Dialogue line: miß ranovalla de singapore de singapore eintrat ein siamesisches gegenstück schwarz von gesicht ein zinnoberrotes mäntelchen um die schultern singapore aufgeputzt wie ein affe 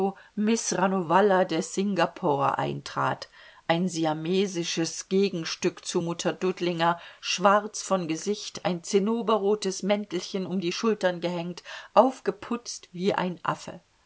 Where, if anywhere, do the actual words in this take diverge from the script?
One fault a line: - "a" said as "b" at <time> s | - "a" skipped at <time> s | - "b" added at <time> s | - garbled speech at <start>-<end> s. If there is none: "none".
- "de singapore" skipped at 2.6 s
- "zu mutter dudlinger" added at 5.8 s
- "singapore" said as "gehängt" at 11.2 s